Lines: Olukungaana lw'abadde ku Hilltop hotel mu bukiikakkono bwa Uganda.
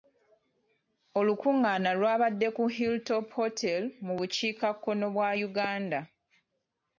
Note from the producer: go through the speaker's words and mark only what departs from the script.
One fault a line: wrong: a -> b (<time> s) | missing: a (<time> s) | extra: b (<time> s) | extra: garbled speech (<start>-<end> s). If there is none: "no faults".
no faults